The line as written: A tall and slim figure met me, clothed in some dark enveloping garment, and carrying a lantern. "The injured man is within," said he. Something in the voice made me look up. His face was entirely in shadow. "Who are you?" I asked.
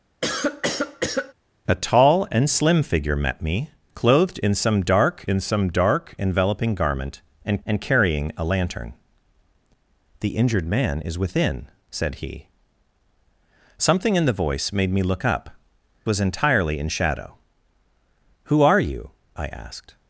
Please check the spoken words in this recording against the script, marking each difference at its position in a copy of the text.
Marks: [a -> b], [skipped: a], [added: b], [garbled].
A tall and slim figure met me, clothed in some dark [added: in some dark] enveloping garment, and [added: and] carrying a lantern. "The injured man is within," said he. Something in the voice made me look up. [skipped: His face] was entirely in shadow. "Who are you?" I asked.